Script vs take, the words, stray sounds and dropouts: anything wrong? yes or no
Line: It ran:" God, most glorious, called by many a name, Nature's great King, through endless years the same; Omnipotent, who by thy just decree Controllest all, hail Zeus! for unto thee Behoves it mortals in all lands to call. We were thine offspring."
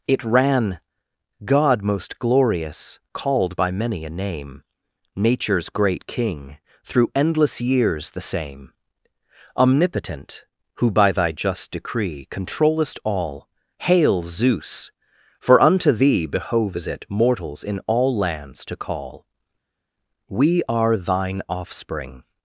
yes